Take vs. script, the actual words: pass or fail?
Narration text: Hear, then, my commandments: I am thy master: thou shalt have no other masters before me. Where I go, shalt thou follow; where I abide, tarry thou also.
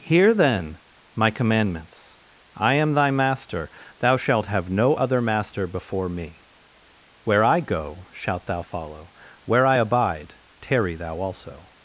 fail